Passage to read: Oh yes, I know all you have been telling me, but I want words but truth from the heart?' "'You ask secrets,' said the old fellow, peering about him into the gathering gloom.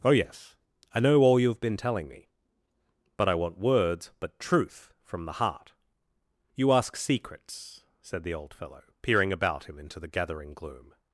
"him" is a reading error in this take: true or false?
false